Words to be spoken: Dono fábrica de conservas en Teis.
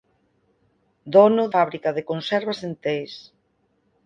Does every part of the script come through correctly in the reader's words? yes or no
yes